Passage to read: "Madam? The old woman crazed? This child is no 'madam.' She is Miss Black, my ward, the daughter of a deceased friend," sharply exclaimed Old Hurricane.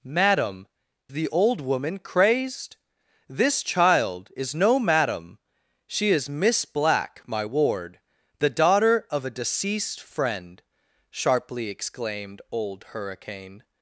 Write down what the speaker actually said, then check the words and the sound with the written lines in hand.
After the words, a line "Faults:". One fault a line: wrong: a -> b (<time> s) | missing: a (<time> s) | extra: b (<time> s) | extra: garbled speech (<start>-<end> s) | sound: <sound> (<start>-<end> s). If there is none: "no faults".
"Madam? The old woman crazed? This child is no 'madam.' She is Miss Black, my ward, the daughter of a deceased friend," sharply exclaimed Old Hurricane.
Faults:
no faults